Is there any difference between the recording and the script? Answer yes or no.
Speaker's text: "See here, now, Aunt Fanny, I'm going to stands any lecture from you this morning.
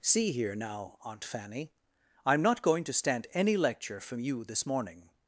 yes